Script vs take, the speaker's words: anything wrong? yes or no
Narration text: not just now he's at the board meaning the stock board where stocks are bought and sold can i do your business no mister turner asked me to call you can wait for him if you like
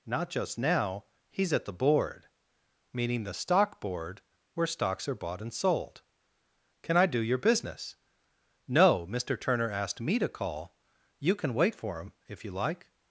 no